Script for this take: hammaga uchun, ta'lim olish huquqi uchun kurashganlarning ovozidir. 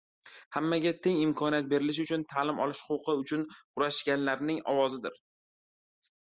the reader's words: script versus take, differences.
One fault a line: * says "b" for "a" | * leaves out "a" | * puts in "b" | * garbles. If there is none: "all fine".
* puts in "teng imkoniyat berilishi"